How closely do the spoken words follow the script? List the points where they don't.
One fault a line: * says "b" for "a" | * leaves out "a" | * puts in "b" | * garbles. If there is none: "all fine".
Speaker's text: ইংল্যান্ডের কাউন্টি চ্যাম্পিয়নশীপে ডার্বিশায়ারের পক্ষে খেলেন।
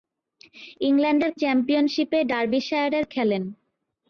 * leaves out "কাউন্টি"
* leaves out "পক্ষে"